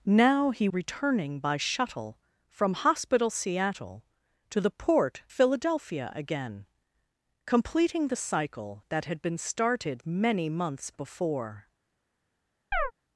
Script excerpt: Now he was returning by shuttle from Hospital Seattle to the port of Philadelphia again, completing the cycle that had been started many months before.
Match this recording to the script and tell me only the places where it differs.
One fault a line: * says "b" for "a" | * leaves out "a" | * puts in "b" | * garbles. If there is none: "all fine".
* leaves out "was"
* leaves out "of"